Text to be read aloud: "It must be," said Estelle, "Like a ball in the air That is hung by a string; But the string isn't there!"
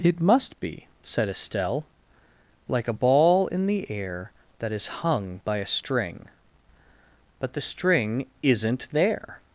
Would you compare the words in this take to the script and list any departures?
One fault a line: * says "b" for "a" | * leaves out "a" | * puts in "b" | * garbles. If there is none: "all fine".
all fine